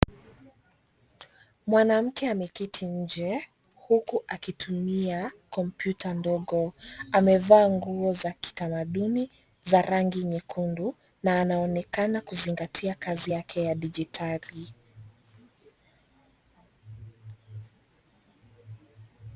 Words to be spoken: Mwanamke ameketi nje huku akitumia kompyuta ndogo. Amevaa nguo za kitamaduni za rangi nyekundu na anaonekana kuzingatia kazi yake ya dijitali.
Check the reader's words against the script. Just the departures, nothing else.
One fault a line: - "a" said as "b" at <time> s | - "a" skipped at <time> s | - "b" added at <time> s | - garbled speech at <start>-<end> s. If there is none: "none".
none